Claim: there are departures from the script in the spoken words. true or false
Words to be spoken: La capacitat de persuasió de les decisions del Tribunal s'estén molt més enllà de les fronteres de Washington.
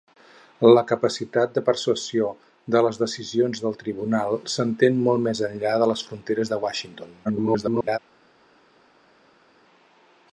true